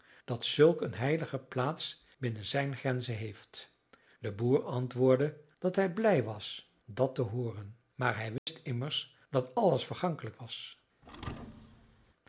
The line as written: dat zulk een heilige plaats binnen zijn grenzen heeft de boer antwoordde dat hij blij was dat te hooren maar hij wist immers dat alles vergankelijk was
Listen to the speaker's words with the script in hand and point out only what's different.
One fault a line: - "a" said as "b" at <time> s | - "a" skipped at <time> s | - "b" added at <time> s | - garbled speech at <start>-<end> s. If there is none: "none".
none